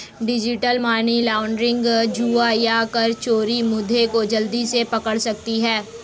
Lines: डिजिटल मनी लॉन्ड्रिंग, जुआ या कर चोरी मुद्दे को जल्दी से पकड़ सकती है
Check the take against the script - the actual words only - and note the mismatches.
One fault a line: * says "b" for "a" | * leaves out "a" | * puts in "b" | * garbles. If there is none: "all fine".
all fine